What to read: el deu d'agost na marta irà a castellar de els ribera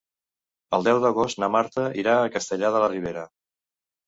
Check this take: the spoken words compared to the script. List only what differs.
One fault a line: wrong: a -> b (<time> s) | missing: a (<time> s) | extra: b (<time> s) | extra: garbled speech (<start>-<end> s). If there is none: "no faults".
wrong: els -> la (2.8 s)